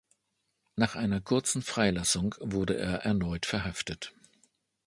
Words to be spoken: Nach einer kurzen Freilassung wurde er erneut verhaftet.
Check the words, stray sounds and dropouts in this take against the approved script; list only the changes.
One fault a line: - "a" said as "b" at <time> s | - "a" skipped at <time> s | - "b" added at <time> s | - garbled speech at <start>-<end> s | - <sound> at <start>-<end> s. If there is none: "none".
none